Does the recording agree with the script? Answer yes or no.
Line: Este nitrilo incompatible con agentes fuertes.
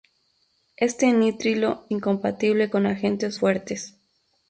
yes